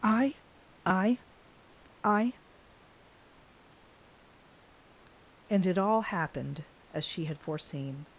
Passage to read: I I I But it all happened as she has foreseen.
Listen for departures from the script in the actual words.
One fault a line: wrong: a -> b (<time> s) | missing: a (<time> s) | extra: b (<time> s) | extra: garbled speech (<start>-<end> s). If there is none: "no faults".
wrong: But -> And (5.5 s)
wrong: has -> had (7.2 s)